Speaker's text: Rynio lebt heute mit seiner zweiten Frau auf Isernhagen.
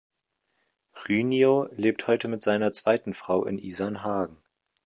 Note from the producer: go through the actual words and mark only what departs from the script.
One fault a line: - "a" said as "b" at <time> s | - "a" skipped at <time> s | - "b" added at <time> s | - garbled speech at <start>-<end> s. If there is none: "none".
- "auf" said as "in" at 3.5 s